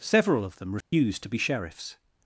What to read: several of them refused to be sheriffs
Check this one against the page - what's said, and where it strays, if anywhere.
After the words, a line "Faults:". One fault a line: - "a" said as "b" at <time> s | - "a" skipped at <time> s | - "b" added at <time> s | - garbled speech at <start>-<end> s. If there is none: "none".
several of them refused to be sheriffs
Faults:
none